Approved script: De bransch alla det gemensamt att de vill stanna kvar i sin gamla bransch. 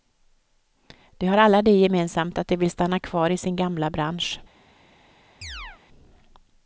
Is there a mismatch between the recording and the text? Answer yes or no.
yes